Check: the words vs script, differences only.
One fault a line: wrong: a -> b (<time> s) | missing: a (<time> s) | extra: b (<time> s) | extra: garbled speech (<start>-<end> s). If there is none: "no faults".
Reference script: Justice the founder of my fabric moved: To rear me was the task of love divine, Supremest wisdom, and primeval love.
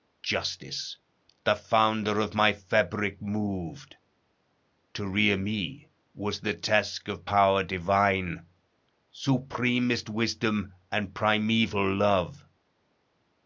wrong: love -> power (7.2 s)